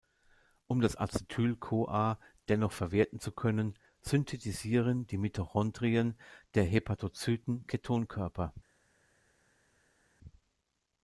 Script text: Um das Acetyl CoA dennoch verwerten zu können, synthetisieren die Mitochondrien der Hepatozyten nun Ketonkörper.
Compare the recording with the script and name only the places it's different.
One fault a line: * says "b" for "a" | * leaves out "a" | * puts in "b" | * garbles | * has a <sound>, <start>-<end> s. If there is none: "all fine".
* leaves out "nun"